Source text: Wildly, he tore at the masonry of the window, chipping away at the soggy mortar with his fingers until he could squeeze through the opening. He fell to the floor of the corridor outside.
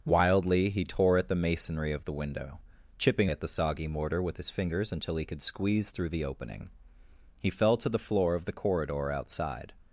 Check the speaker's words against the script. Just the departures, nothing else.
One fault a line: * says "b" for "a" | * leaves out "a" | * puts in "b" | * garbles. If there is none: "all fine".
* leaves out "away"